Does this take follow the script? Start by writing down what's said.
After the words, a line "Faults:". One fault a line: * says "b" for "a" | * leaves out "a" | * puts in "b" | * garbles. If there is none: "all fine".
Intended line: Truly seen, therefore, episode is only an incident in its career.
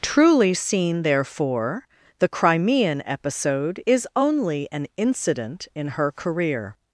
Truly seen, therefore, the Crimean episode is only an incident in her career.
Faults:
* puts in "the Crimean"
* says "her" for "its"